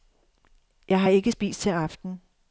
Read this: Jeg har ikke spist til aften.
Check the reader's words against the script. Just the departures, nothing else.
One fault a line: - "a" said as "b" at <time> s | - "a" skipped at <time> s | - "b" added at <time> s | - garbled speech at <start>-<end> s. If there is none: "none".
none